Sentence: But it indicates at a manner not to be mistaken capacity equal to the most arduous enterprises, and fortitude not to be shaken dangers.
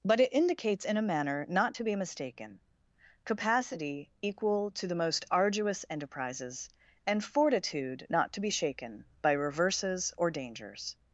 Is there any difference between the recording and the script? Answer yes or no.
yes